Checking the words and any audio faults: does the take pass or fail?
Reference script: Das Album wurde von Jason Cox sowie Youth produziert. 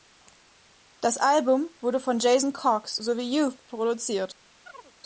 fail